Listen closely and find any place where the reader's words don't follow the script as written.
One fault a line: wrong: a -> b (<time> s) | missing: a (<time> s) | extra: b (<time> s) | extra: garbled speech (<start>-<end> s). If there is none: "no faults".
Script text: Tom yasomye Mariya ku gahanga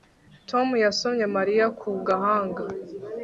no faults